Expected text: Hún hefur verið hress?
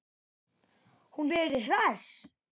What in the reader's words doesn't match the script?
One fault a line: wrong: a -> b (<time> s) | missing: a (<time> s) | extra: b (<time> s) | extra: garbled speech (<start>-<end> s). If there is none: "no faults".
missing: hefur (1.3 s)